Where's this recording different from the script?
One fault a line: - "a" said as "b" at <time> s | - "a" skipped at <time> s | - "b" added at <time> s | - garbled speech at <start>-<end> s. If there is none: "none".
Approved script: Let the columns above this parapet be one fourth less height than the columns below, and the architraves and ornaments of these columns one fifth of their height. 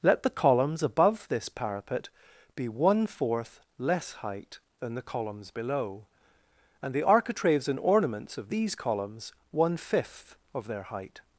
none